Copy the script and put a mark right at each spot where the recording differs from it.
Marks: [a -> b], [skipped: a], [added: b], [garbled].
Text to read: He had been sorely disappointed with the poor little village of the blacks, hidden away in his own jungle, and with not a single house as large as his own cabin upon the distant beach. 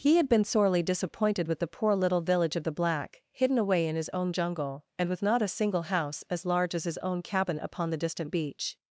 He had been sorely disappointed with the poor little village of the [blacks, -> black] hidden away in his own jungle, and with not a single house as large as his own cabin upon the distant beach.